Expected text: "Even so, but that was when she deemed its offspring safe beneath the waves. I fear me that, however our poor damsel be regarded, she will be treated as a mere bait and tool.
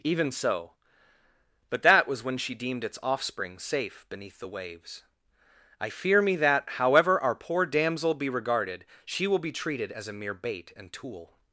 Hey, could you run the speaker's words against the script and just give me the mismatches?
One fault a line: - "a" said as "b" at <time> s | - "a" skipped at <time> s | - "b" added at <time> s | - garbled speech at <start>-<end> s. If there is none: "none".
none